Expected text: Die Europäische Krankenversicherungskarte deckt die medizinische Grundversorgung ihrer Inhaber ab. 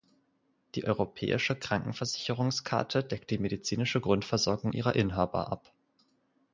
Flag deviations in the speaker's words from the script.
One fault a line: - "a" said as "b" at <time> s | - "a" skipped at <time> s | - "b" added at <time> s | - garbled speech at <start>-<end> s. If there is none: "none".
none